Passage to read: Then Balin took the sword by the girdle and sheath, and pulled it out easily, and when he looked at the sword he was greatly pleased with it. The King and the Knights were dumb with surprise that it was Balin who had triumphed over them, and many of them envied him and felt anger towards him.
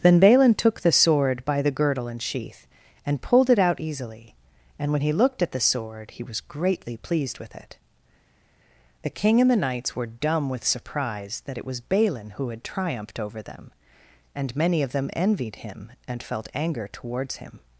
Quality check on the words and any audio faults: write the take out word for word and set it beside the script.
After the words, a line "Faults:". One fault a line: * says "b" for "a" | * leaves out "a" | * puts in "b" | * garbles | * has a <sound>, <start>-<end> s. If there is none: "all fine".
Then Balin took the sword by the girdle and sheath, and pulled it out easily, and when he looked at the sword he was greatly pleased with it. The King and the Knights were dumb with surprise that it was Balin who had triumphed over them, and many of them envied him and felt anger towards him.
Faults:
all fine